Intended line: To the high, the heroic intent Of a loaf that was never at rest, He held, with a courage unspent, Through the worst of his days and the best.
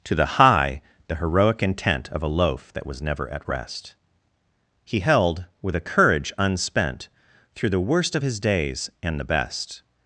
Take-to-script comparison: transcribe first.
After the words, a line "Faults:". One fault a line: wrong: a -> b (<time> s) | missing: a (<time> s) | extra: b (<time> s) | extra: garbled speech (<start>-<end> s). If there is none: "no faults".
To the high, the heroic intent Of a loaf that was never at rest, He held, with a courage unspent, Through the worst of his days and the best.
Faults:
no faults